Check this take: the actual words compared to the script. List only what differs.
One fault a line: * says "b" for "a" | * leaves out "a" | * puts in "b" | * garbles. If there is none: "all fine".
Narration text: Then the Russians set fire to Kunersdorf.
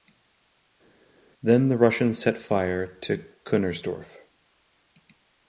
all fine